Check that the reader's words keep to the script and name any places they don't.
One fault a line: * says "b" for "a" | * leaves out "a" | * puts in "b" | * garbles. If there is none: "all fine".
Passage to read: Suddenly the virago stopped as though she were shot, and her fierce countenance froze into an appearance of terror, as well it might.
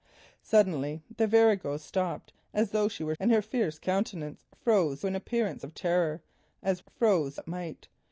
* leaves out "shot"
* leaves out "into"
* says "froze" for "well"